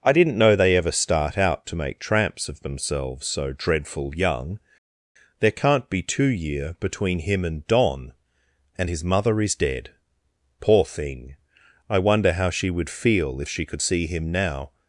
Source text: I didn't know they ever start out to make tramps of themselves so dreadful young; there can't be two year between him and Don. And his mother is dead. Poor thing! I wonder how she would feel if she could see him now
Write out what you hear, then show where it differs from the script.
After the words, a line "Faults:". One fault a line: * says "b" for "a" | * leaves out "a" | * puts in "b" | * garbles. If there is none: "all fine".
I didn't know they ever start out to make tramps of themselves so dreadful young; there can't be two year between him and Don. And his mother is dead. Poor thing! I wonder how she would feel if she could see him now
Faults:
all fine